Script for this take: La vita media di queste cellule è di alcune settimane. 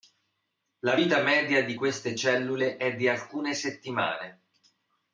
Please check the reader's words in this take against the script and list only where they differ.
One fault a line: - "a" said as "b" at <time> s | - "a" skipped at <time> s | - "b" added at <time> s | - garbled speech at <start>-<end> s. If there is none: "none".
none